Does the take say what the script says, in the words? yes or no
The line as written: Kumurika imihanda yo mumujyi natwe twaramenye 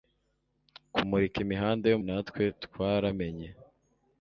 no